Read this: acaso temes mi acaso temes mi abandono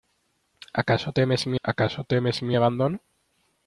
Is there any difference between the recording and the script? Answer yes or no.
no